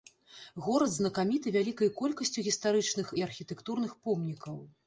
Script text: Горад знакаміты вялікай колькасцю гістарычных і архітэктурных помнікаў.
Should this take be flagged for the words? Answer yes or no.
no